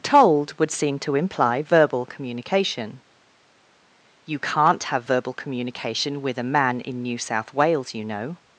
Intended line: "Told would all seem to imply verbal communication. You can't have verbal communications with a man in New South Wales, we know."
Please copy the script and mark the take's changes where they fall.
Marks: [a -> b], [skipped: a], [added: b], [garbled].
"Told would [skipped: all] seem to imply verbal communication. You can't have verbal [communications -> communication] with a man in New South Wales, [we -> you] know."